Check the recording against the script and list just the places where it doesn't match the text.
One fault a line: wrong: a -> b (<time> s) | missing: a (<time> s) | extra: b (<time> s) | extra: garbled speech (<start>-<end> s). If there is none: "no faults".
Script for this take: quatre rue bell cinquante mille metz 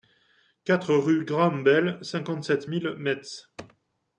extra: graham (1.2 s)
extra: sept (2.4 s)